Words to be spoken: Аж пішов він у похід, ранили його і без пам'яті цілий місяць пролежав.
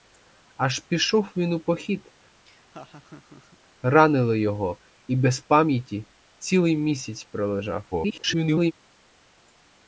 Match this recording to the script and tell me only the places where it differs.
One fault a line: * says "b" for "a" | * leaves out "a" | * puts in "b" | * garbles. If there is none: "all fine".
* garbles